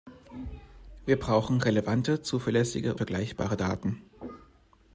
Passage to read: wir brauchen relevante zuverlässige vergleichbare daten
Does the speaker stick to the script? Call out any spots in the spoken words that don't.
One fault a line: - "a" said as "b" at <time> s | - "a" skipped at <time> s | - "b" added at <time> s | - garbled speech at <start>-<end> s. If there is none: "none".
none